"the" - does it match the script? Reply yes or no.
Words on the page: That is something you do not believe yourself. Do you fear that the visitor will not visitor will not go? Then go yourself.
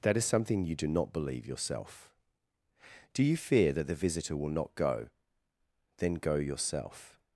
yes